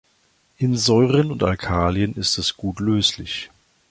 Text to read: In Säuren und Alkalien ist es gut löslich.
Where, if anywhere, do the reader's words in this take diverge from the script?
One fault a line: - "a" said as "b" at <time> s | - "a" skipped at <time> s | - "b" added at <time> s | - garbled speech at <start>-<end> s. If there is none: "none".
none